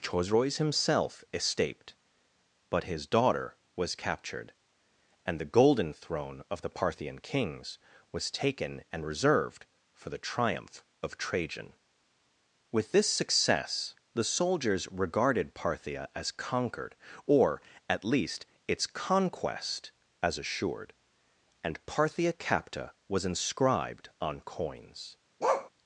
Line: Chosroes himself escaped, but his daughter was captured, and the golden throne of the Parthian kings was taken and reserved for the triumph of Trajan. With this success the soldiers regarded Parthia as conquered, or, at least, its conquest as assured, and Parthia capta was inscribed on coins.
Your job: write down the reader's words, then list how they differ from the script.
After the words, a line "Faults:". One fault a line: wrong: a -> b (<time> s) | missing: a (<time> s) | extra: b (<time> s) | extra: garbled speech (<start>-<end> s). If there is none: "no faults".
Chosroes himself escaped, but his daughter was captured, and the golden throne of the Parthian kings was taken and reserved for the triumph of Trajan. With this success the soldiers regarded Parthia as conquered, or, at least, its conquest as assured, and Parthia capta was inscribed on coins.
Faults:
no faults